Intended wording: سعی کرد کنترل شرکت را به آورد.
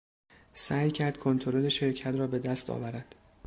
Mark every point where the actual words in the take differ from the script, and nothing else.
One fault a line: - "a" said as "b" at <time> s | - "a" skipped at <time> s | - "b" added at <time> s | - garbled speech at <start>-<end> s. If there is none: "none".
- "دست" added at 2.4 s